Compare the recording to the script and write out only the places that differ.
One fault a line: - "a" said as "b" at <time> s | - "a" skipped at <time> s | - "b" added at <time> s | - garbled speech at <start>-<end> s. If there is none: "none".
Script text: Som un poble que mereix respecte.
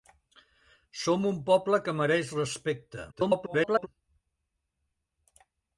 - garbled speech at 3.1-3.9 s